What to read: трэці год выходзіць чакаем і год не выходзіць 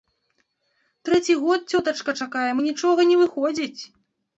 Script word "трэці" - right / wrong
right